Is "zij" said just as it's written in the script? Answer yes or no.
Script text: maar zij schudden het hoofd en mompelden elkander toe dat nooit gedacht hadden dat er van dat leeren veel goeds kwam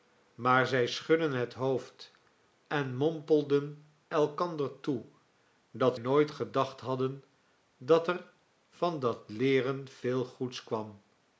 yes